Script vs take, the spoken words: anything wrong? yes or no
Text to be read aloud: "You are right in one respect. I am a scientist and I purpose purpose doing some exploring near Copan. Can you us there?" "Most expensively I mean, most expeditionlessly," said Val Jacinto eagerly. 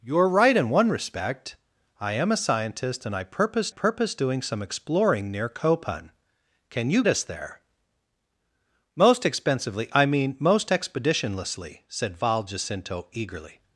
no